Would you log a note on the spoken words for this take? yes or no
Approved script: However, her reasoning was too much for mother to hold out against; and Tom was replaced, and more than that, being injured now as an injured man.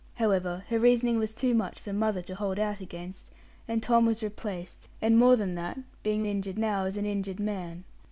no